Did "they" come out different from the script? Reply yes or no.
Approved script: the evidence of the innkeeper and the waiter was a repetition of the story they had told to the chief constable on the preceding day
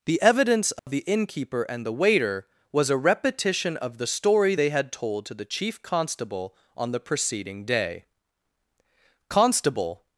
no